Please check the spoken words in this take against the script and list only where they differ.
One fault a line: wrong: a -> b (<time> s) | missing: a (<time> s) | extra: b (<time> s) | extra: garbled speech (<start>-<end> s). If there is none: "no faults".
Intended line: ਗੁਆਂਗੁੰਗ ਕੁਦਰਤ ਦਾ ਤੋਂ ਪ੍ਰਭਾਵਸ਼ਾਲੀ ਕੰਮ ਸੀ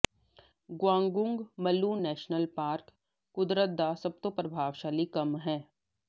extra: ਮਲੂ ਨੈਸ਼ਨਲ ਪਾਰਕ (1.6 s)
extra: ਸਭ (3.9 s)
wrong: ਸੀ -> ਹੈ (5.4 s)